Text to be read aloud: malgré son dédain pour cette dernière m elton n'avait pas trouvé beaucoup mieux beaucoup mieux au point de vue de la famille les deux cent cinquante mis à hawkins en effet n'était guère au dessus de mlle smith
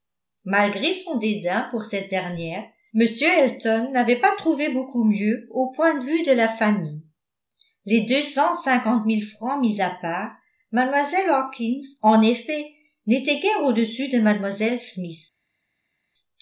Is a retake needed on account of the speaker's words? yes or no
yes